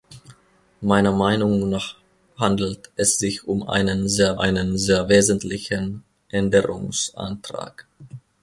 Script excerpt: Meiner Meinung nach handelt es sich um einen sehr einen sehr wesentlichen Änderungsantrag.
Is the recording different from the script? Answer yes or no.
no